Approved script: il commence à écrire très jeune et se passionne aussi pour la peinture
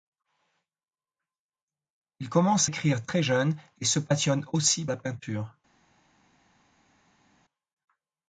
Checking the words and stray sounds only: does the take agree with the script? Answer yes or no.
no